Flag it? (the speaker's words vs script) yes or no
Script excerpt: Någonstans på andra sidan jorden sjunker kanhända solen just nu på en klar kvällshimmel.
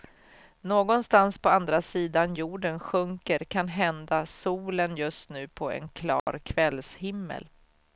no